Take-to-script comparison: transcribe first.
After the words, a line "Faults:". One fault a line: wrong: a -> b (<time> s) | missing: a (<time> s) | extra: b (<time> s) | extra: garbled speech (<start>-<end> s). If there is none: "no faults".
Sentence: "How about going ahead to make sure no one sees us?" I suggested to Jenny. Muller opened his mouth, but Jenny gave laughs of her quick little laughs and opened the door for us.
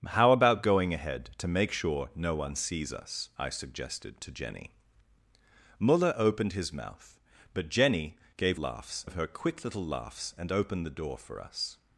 "How about going ahead to make sure no one sees us?" I suggested to Jenny. Muller opened his mouth, but Jenny gave laughs of her quick little laughs and opened the door for us.
Faults:
no faults